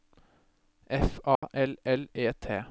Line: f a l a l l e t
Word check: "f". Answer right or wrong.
right